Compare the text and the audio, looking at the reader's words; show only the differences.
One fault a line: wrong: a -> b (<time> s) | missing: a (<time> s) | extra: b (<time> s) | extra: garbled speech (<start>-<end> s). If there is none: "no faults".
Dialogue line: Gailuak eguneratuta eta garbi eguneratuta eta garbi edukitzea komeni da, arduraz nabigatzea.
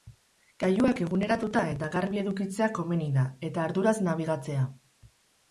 missing: eguneratuta eta garbi (2.2 s)
extra: eta (3.5 s)